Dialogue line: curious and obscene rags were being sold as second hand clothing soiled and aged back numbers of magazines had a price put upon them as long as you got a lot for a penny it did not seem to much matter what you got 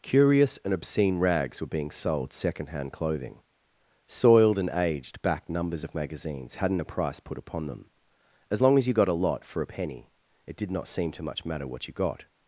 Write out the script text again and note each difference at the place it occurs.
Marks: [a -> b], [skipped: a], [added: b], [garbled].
curious and obscene rags were being sold [skipped: as] second hand clothing soiled and aged back numbers of magazines [had -> hadn't] a price put upon them as long as you got a lot for a penny it did not seem to much matter what you got